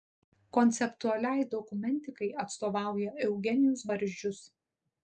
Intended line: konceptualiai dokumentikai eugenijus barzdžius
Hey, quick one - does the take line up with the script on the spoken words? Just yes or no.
no